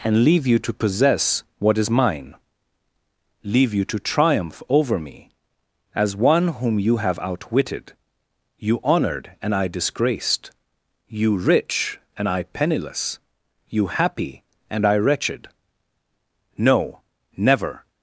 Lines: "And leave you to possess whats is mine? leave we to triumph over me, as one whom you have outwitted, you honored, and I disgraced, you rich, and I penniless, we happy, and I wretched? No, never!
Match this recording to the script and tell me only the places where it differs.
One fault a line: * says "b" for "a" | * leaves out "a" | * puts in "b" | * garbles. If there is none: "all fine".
* says "what" for "whats"
* says "you" for "we"
* says "you" for "we"